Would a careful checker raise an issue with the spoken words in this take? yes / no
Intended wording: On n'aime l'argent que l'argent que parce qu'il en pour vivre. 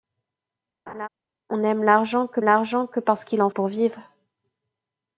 no